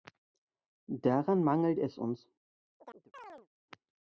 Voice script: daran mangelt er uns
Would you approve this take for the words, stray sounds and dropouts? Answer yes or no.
no